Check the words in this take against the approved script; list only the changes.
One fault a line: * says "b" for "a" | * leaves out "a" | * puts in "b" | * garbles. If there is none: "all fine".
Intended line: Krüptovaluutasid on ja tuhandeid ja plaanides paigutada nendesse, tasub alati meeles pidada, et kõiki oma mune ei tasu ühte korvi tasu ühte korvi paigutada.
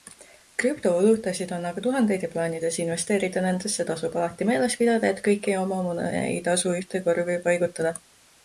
* says "aga" for "ja"
* says "investeerida" for "paigutada"
* leaves out "tasu ühte korvi"